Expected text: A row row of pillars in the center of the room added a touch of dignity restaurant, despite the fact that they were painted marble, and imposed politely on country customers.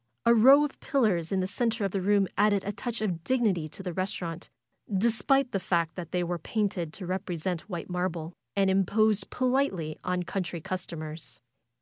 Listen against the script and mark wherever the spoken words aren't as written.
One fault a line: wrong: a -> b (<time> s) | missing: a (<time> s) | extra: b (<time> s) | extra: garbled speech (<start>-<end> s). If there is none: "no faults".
missing: row (0.7 s)
extra: to the (3.7 s)
extra: to represent white (6.9 s)